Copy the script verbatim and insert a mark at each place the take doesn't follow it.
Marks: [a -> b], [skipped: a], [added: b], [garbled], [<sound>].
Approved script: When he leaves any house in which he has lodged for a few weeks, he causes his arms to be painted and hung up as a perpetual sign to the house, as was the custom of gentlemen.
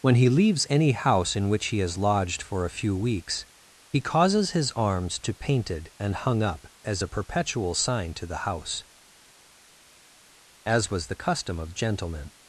When he leaves any house in which he has lodged for a few weeks, he causes his arms to [skipped: be] painted and hung up as a perpetual sign to the house, as was the custom of gentlemen.